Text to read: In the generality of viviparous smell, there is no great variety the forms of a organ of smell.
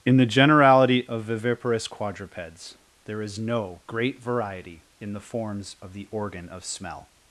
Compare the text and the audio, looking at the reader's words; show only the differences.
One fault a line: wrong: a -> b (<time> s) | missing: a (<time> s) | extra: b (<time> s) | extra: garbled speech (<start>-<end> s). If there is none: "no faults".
wrong: smell -> quadrupeds (1.9 s)
extra: in (5.0 s)
wrong: a -> the (5.9 s)